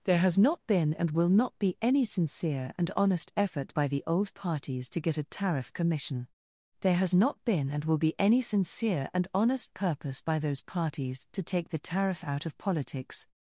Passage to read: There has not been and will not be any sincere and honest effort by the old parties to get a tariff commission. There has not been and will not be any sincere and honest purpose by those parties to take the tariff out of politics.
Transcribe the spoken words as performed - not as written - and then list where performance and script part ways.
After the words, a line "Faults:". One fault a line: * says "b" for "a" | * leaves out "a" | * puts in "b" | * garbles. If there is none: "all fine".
There has not been and will not be any sincere and honest effort by the old parties to get a tariff commission. There has not been and will be any sincere and honest purpose by those parties to take the tariff out of politics.
Faults:
* leaves out "not"